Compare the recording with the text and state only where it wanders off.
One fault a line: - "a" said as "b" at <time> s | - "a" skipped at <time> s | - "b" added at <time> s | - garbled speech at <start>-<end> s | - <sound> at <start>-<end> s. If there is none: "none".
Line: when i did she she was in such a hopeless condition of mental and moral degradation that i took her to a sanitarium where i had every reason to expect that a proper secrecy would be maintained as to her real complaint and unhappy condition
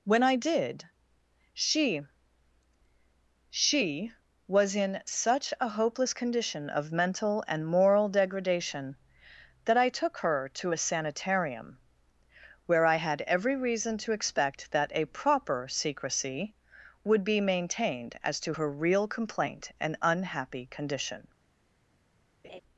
- laugh at 22.4-22.6 s